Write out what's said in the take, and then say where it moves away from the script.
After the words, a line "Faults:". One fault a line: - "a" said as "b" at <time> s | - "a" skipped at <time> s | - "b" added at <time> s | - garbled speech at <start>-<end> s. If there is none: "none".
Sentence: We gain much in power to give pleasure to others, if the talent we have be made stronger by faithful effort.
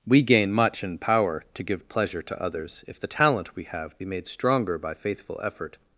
We gain much in power to give pleasure to others, if the talent we have be made stronger by faithful effort.
Faults:
none